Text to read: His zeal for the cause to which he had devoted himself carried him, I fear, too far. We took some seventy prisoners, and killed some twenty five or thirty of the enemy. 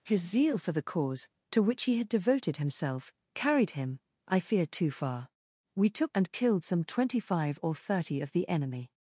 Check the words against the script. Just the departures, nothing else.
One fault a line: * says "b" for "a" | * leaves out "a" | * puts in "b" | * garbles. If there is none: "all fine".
* leaves out "some seventy prisoners"